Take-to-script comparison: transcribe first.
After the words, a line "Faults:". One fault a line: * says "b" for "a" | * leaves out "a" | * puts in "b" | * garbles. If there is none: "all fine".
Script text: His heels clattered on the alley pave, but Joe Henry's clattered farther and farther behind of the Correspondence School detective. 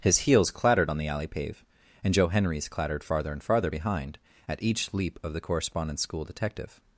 His heels clattered on the alley pave, and Joe Henry's clattered farther and farther behind at each leap of the Correspondence School detective.
Faults:
* says "and" for "but"
* puts in "at each leap"